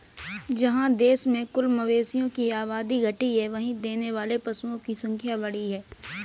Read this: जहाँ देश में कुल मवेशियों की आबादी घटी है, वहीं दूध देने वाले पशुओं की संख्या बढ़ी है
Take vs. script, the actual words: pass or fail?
fail